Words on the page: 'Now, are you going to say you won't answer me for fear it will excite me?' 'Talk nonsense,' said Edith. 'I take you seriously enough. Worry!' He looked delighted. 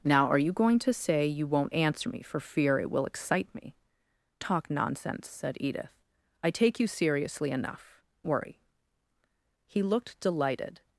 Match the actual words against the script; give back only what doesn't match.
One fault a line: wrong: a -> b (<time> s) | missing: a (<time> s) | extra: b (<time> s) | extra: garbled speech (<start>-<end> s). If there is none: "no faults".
no faults